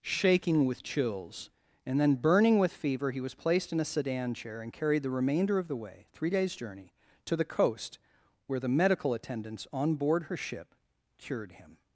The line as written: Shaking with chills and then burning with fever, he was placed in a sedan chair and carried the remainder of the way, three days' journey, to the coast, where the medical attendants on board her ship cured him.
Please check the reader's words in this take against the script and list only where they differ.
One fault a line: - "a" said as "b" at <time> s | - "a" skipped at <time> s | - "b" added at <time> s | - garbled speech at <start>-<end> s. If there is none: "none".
none